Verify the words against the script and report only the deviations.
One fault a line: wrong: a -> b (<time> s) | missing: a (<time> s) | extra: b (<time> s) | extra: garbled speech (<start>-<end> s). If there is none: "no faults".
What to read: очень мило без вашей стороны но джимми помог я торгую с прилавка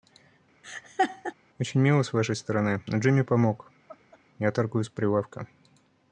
wrong: без -> с (2.0 s)